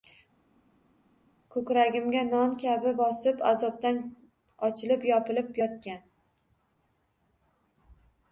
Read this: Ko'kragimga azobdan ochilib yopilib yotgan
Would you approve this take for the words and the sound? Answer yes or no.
no